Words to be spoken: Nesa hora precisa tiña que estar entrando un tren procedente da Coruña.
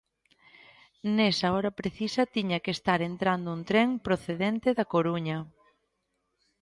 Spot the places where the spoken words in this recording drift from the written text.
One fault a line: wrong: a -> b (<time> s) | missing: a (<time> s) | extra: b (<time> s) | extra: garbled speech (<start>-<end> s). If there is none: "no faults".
no faults